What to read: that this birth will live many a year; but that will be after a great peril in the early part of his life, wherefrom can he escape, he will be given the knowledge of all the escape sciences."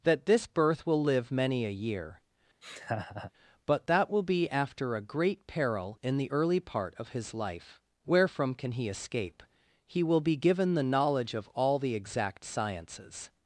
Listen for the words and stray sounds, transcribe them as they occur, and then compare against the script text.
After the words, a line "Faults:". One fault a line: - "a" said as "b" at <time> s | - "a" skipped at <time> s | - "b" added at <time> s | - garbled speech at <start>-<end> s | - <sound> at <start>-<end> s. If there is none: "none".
that this birth will live many a year; but that will be after a great peril in the early part of his life, wherefrom can he escape, he will be given the knowledge of all the exact sciences."
Faults:
- laugh at 2.6-3.3 s
- "escape" said as "exact" at 11.9 s